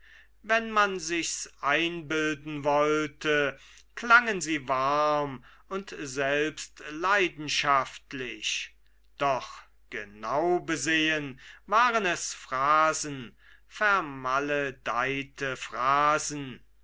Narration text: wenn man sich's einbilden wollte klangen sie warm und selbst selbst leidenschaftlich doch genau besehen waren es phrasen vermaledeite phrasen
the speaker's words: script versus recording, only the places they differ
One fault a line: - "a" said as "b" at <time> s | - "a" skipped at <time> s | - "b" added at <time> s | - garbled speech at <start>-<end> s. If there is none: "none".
- "selbst" skipped at 6.8 s